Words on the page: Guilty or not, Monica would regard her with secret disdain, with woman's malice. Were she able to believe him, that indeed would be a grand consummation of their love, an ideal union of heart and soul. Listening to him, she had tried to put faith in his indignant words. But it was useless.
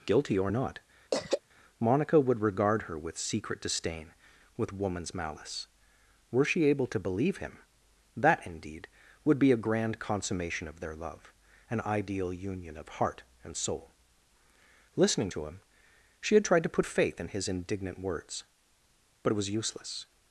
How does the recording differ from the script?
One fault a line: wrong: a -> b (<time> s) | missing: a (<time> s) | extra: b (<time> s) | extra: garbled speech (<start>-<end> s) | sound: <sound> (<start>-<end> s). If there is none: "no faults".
sound: throat clearing (1.1-1.4 s)